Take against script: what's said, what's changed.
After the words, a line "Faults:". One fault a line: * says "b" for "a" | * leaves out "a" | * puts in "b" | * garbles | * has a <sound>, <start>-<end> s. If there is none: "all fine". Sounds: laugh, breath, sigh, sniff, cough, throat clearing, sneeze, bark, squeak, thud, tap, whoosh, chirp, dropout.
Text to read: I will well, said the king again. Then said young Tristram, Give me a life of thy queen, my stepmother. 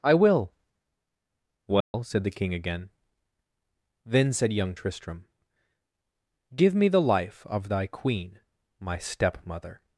I will well, said the king again. Then said young Tristram, Give me the life of thy queen, my stepmother.
Faults:
* has a dropout, 1.8-1.9 s
* says "the" for "a"